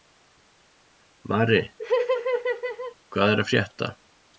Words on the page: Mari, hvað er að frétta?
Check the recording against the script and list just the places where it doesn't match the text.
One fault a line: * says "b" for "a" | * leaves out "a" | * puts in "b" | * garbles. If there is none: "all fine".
all fine